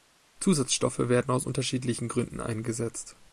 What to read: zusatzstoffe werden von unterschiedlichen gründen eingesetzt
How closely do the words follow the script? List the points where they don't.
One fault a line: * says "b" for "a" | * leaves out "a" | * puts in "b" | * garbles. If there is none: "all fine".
* says "aus" for "von"